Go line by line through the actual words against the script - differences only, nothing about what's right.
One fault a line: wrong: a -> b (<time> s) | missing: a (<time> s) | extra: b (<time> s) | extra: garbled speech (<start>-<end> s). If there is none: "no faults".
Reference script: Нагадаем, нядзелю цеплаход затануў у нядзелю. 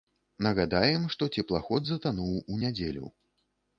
wrong: нядзелю -> што (1.1 s)